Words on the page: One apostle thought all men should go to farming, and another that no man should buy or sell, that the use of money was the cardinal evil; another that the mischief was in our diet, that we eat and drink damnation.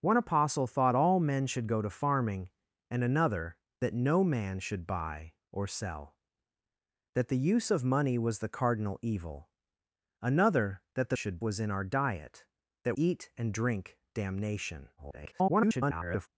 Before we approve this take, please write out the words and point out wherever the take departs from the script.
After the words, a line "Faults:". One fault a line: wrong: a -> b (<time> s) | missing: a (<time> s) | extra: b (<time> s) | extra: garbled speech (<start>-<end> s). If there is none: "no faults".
One apostle thought all men should go to farming, and another that no man should buy or sell, that the use of money was the cardinal evil; another that the should was in our diet, that eat and drink damnation. [garbled]
Faults:
wrong: mischief -> should (11.1 s)
missing: we (13.0 s)
extra: garbled speech (15.0-16.3 s)